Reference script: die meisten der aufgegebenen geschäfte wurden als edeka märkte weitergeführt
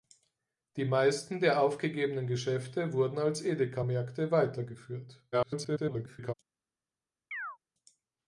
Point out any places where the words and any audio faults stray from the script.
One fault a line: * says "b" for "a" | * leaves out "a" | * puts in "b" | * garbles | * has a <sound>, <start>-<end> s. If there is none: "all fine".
* garbles
* has a chirp, 7.3-7.6 s